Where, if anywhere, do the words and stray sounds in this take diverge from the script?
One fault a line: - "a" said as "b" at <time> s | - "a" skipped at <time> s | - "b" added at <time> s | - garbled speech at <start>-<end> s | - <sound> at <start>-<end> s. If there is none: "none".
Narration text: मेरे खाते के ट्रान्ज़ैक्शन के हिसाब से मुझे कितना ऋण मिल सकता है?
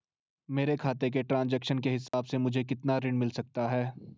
- dropout at 2.1-2.1 s